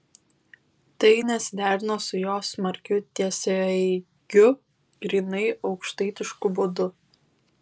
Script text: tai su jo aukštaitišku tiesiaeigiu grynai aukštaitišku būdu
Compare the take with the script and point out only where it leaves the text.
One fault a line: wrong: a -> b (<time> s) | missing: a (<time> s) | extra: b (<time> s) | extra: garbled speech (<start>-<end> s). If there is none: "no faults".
extra: nesiderino (1.3 s)
wrong: aukštaitišku -> smarkiu (2.5 s)